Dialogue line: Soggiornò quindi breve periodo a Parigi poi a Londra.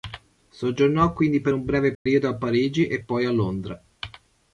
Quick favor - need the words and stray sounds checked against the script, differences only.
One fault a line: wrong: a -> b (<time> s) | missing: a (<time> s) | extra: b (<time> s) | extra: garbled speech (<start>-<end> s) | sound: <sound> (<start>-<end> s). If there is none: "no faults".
extra: per un (1.4 s)
sound: dropout (1.9-2.1 s)
extra: e (2.9 s)